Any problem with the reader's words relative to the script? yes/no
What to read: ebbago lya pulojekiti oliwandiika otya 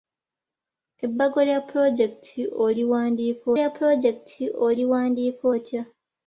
yes